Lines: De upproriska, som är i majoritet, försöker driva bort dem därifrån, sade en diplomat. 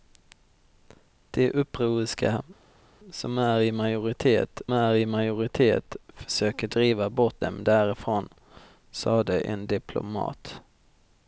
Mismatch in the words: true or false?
true